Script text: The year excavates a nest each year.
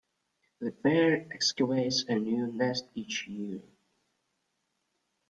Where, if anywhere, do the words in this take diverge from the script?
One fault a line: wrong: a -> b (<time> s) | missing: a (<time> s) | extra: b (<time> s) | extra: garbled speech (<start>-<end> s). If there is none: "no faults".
wrong: year -> pair (0.7 s)
extra: new (2.1 s)